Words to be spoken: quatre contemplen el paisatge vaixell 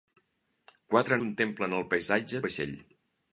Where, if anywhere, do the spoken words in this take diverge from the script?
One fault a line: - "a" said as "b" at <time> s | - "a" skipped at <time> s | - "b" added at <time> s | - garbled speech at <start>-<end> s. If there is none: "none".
none